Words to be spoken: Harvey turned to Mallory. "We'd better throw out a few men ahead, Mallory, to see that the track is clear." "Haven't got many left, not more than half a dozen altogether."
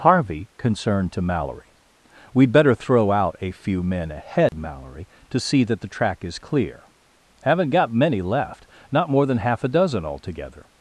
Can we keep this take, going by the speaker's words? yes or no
no